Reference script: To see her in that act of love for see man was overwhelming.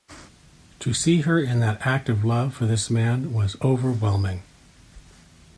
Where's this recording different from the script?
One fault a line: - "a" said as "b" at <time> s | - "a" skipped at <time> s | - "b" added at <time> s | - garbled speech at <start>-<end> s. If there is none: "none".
- "see" said as "this" at 2.6 s